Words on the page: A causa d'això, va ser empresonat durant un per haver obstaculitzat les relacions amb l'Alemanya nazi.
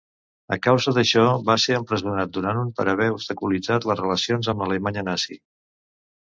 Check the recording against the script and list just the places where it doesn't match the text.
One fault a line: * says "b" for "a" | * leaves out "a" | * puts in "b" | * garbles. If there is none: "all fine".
all fine